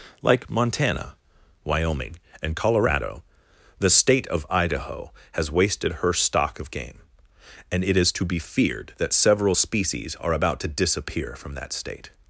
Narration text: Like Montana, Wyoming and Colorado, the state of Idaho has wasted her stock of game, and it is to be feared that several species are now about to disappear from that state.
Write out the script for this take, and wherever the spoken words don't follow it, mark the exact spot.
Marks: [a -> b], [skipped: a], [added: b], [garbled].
Like Montana, Wyoming and Colorado, the state of Idaho has wasted her stock of game, and it is to be feared that several species are [skipped: now] about to disappear from that state.